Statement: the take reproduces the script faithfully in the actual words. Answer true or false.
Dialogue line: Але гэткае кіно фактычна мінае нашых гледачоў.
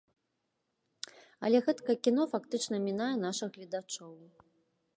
true